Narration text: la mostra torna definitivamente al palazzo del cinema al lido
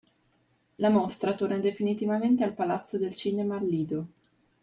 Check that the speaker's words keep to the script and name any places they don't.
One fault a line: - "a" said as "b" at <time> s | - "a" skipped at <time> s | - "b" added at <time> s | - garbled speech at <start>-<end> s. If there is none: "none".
none